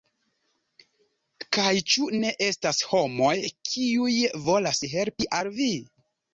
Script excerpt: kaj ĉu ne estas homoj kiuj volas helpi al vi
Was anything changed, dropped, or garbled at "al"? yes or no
no